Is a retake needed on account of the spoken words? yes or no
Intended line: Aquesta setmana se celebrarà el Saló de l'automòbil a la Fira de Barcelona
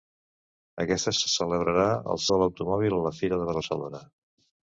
yes